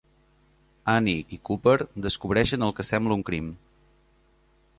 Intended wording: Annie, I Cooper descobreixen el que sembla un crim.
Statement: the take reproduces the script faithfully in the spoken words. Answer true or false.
true